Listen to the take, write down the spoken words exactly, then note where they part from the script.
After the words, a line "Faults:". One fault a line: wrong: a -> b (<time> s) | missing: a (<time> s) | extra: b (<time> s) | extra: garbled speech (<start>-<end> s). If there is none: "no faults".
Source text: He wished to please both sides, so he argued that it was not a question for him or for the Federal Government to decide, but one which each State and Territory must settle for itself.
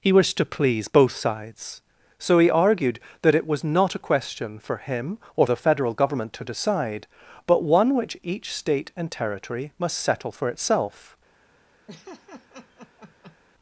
He wished to please both sides, so he argued that it was not a question for him or the Federal Government to decide, but one which each State and Territory must settle for itself.
Faults:
missing: for (5.5 s)